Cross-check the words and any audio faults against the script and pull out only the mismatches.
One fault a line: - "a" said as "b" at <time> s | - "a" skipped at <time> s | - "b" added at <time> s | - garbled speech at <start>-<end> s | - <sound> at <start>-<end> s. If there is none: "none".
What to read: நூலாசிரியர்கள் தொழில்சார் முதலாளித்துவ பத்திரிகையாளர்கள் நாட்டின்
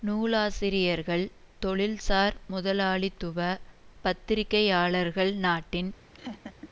- laugh at 6.1-6.7 s